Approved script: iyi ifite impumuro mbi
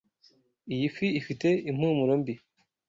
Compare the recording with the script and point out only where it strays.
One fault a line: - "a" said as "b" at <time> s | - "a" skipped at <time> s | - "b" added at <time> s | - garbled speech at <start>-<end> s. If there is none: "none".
- "fi" added at 0.9 s